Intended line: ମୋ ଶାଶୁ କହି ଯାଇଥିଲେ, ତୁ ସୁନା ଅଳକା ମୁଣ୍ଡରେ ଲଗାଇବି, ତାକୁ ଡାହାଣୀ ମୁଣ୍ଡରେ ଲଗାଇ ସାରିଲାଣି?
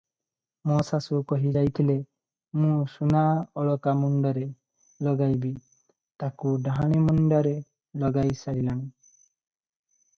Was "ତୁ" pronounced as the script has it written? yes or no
no